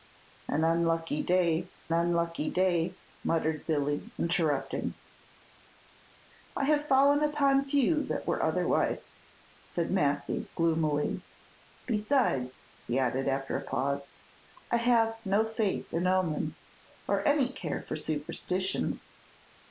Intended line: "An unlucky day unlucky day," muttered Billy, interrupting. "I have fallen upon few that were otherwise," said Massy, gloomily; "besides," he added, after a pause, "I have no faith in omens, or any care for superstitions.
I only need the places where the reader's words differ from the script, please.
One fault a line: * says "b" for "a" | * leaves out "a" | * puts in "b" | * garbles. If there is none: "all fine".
all fine